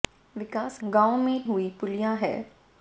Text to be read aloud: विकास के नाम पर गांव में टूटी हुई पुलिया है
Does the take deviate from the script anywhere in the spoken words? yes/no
yes